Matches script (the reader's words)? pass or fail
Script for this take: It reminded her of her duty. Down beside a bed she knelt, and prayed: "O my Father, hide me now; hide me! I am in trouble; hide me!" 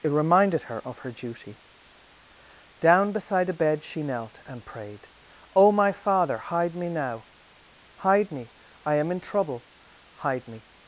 pass